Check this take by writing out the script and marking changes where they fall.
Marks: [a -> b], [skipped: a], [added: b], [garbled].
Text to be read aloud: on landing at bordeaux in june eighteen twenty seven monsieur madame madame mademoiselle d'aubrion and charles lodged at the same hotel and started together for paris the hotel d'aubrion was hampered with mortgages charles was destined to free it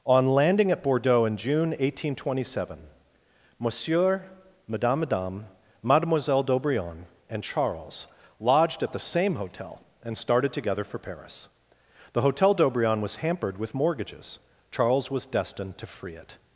on landing at bordeaux in june eighteen twenty seven monsieur madame madame mademoiselle d'aubrion and charles lodged at the same hotel and started together for paris the hotel d'aubrion was hampered with mortgages charles was destined to free it